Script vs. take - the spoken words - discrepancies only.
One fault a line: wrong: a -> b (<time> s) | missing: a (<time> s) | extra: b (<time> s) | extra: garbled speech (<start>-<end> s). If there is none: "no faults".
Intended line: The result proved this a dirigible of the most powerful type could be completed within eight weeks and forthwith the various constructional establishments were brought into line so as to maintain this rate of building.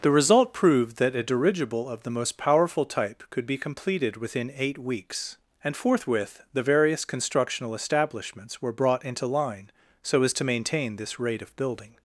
wrong: this -> that (1.0 s)